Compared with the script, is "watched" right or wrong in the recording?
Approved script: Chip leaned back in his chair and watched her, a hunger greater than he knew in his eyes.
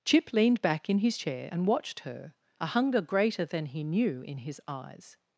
right